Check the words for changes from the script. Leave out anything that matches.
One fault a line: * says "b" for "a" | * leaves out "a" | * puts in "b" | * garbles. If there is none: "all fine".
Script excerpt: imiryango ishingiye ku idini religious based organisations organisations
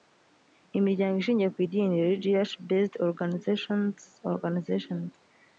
all fine